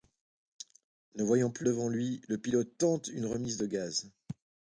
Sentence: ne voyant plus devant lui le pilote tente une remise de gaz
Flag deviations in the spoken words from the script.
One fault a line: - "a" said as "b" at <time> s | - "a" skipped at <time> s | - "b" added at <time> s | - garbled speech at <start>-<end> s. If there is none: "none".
none